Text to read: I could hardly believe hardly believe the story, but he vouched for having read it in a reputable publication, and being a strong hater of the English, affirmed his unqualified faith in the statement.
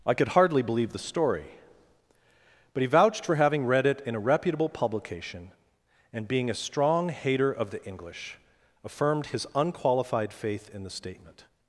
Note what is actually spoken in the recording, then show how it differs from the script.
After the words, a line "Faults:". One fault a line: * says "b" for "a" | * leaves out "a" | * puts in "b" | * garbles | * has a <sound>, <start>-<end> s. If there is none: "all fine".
I could hardly believe the story, but he vouched for having read it in a reputable publication, and being a strong hater of the English, affirmed his unqualified faith in the statement.
Faults:
* leaves out "hardly believe"